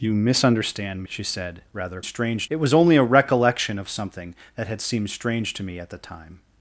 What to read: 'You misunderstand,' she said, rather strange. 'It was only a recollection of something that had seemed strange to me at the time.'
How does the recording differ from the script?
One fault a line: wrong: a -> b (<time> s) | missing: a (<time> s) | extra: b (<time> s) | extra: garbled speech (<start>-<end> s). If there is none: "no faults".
no faults